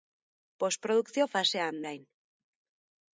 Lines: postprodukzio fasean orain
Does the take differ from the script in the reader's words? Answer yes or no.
no